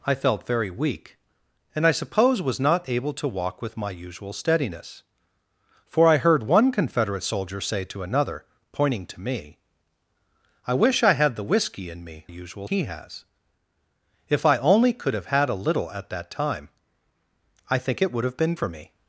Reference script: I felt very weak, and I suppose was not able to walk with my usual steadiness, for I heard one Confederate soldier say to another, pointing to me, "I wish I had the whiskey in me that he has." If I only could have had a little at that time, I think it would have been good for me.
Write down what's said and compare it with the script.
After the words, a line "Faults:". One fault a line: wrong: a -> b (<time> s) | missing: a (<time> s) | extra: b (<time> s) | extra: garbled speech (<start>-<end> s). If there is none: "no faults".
I felt very weak, and I suppose was not able to walk with my usual steadiness, for I heard one Confederate soldier say to another, pointing to me, "I wish I had the whiskey in me usual he has." If I only could have had a little at that time, I think it would have been for me.
Faults:
wrong: that -> usual (12.3 s)
missing: good (18.5 s)